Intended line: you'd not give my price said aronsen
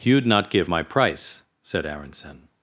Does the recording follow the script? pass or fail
pass